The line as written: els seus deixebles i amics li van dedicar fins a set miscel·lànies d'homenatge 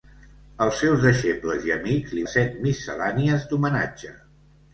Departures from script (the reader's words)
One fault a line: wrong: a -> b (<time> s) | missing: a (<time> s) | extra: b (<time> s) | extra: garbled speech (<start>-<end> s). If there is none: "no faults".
missing: van dedicar fins (2.2 s)